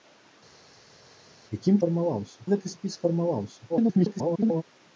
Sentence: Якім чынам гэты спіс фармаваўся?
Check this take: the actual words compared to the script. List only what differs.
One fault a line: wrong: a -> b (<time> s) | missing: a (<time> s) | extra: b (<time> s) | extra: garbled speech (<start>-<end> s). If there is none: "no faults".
wrong: чынам -> фармаваўся (1.8 s)
extra: garbled speech (3.7-4.6 s)